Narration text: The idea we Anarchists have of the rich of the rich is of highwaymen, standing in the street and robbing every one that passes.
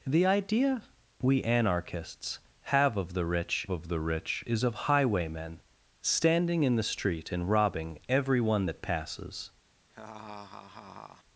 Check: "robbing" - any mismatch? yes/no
no